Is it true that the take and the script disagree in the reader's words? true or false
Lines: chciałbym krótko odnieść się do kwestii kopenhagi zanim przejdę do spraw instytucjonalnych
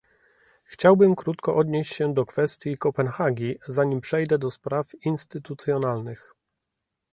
false